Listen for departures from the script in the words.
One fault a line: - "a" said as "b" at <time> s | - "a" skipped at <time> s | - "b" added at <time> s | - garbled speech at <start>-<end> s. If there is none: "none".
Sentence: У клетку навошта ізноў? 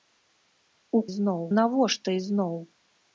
- "клетку" said as "ізноў" at 1.1 s